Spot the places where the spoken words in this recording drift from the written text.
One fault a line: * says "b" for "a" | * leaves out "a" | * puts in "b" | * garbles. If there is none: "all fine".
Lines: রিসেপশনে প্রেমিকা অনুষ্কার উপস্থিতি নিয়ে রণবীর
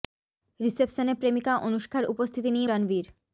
all fine